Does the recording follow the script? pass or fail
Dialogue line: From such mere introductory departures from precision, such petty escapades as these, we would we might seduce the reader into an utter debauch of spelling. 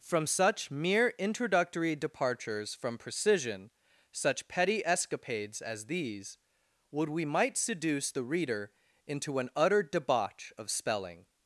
fail